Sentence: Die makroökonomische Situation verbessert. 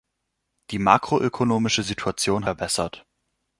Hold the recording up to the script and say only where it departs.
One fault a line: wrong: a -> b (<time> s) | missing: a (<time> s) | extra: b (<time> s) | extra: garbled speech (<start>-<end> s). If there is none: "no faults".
no faults